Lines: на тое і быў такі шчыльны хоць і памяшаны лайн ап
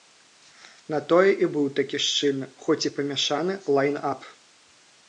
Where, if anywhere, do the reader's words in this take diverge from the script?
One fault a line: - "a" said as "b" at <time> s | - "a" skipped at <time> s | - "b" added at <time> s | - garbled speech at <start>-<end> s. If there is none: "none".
none